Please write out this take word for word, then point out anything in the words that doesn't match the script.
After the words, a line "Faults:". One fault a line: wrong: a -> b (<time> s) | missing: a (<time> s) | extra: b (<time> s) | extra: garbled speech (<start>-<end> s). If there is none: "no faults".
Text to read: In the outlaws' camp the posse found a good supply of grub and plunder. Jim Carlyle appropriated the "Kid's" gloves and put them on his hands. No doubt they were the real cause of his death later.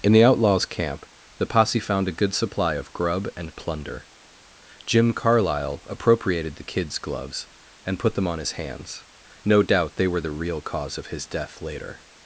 In the outlaws' camp the posse found a good supply of grub and plunder. Jim Carlyle appropriated the "Kid's" gloves and put them on his hands. No doubt they were the real cause of his death later.
Faults:
no faults